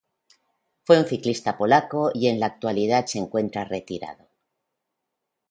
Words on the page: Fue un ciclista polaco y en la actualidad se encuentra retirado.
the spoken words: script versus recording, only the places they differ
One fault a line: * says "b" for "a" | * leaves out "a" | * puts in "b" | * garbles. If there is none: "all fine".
all fine